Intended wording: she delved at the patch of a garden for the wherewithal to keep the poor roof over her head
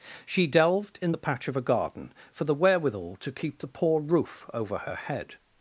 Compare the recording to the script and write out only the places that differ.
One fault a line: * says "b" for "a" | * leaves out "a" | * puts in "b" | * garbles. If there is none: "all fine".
* says "in" for "at"